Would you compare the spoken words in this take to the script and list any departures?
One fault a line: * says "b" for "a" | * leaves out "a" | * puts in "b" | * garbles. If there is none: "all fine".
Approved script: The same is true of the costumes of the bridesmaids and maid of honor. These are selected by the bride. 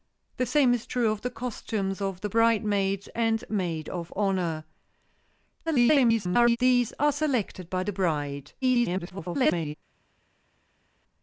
* garbles
* garbles